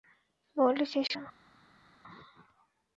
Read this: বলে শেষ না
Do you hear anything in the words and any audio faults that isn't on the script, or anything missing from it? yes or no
no